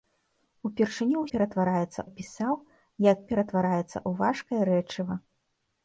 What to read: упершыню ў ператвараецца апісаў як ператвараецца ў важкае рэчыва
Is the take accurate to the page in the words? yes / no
yes